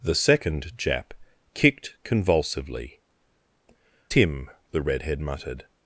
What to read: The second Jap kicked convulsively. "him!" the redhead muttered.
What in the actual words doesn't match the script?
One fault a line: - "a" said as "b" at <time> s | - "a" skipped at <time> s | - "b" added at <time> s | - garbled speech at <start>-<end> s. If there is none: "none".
none